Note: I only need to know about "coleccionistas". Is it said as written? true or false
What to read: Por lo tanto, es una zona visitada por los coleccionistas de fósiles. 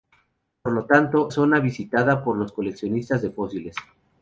true